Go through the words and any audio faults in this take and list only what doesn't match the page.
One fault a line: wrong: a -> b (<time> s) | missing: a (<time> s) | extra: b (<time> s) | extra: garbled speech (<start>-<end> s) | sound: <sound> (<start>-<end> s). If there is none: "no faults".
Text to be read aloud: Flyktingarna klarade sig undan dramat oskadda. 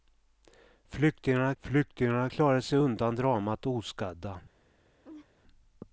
extra: flyktingarna (1.6 s)
sound: laugh (5.0-5.3 s)